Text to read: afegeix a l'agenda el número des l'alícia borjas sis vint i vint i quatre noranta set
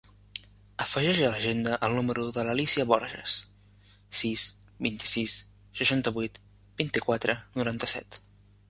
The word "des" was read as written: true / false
false